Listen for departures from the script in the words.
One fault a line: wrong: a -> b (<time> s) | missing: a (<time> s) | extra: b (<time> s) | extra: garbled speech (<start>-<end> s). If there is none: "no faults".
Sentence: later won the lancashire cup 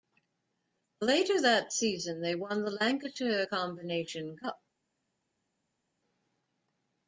extra: that season they (1.4 s)
extra: combination (3.4 s)